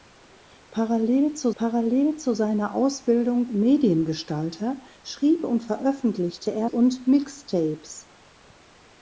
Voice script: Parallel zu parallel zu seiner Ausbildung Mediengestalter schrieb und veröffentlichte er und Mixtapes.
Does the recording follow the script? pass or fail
pass